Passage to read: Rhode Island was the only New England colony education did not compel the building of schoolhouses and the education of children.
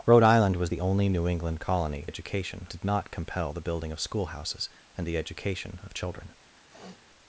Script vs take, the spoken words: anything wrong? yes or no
no